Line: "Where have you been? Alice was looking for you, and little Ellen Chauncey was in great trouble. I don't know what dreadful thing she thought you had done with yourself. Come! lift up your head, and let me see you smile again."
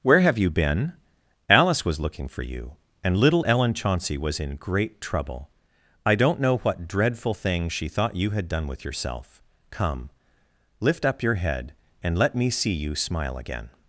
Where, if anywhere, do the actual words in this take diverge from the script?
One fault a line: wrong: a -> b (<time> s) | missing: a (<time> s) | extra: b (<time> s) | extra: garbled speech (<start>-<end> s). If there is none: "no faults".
no faults